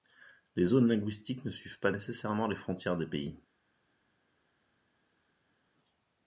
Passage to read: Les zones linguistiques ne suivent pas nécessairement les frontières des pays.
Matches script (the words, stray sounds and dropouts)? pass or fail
pass